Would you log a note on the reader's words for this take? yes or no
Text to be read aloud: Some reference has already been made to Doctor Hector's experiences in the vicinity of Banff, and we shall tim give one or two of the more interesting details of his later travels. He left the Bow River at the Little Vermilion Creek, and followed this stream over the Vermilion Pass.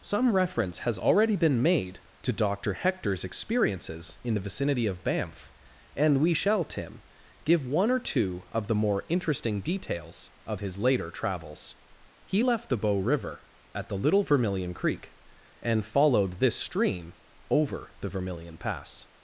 no